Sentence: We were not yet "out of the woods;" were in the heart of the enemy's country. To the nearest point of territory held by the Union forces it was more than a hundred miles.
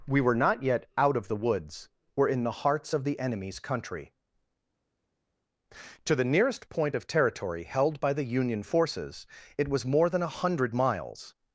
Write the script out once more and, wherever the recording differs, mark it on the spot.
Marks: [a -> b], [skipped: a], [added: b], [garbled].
We were not yet "out of the woods;" were in the [heart -> hearts] of the enemy's country. To the nearest point of territory held by the Union forces it was more than a hundred miles.